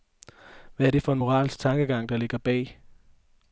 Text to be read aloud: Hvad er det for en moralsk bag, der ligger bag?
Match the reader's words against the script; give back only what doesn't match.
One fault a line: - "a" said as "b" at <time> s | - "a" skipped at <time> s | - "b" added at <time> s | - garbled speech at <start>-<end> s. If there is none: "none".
- "bag" said as "tankegang" at 1.6 s